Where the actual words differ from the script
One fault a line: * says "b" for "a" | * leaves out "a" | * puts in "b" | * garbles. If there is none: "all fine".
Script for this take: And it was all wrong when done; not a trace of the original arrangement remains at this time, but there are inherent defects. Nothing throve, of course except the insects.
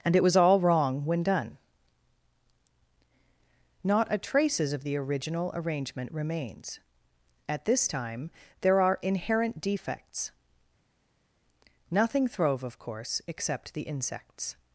* says "traces" for "trace"
* leaves out "but"